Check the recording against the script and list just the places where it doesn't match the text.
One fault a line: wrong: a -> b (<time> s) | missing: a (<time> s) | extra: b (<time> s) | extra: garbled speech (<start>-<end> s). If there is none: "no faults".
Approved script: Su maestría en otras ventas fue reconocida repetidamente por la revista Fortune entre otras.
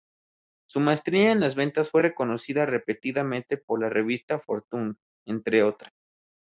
wrong: otras -> las (1.4 s)